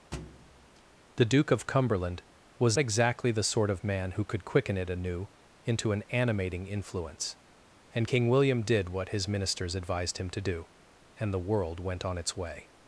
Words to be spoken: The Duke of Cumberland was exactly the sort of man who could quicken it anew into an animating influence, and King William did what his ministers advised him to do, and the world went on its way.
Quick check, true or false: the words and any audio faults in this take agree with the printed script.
false